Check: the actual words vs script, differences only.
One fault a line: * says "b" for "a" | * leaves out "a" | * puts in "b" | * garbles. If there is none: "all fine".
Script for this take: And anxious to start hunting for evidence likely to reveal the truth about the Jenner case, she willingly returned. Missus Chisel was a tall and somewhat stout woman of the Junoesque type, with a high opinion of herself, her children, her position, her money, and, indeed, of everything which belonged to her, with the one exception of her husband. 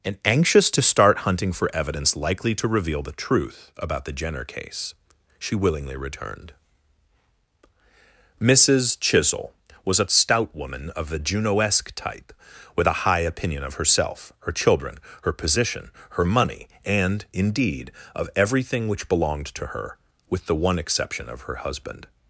* leaves out "tall and somewhat"